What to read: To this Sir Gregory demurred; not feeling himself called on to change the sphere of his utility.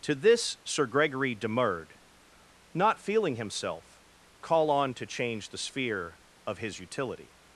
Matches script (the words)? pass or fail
fail